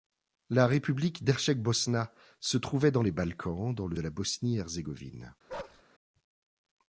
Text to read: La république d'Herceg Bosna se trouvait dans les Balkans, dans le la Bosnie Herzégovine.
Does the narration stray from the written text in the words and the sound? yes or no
yes